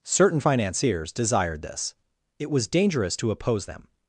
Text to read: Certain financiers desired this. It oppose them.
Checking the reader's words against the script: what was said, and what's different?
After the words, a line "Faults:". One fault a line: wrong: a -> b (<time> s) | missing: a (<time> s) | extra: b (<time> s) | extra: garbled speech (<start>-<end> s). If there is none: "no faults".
Certain financiers desired this. It was dangerous to oppose them.
Faults:
extra: was dangerous to (2.5 s)